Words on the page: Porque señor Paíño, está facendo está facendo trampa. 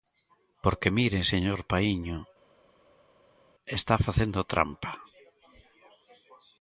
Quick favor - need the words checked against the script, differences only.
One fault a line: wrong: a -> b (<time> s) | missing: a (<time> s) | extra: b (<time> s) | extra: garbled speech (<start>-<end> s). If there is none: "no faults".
extra: mire (1.0 s)
missing: está facendo (4.4 s)